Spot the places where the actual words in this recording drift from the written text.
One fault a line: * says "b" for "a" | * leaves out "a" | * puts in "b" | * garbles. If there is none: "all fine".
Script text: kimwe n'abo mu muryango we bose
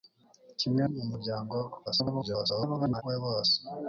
* leaves out "n'abo"
* garbles